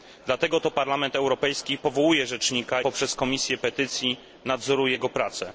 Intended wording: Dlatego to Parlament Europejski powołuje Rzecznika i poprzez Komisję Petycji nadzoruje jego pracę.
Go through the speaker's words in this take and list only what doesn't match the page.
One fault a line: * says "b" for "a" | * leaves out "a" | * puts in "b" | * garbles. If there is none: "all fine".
* leaves out "i"